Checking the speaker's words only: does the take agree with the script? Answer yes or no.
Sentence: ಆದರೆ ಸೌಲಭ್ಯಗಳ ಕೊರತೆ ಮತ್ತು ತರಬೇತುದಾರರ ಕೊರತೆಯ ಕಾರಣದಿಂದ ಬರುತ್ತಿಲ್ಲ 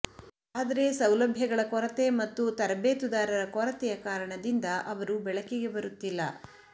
no